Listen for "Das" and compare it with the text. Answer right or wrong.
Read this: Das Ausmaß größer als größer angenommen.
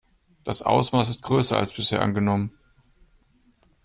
right